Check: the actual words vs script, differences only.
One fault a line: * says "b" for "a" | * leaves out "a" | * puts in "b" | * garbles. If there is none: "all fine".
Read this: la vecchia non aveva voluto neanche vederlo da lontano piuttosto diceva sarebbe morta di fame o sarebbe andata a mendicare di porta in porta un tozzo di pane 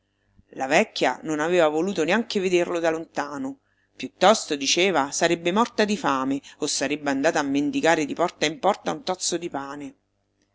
all fine